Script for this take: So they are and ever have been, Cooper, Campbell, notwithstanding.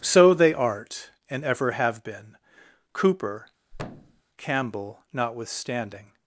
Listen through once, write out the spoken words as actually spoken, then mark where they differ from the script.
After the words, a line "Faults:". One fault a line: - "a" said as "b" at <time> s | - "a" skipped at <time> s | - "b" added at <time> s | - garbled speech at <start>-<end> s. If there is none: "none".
So they art and ever have been, Cooper, Campbell, notwithstanding.
Faults:
- "are" said as "art" at 0.5 s